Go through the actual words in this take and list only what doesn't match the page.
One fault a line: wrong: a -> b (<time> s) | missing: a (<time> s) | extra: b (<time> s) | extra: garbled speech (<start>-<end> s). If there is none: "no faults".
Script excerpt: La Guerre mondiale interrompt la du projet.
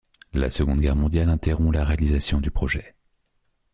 extra: Seconde (0.5 s)
extra: réalisation (1.8 s)